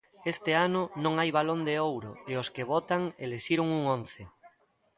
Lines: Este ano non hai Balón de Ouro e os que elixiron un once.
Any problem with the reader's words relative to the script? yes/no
yes